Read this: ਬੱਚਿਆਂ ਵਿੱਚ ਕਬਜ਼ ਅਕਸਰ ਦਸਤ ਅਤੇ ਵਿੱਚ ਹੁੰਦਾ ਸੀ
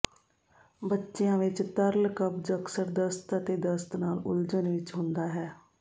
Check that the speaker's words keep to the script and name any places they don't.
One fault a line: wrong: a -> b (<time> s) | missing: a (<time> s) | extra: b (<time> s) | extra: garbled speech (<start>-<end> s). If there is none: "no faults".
extra: ਤਰਲ (1.8 s)
extra: ਦਸਤ ਨਾਲ ਉਲਝਣ (3.6 s)
wrong: ਸੀ -> ਹੈ (5.3 s)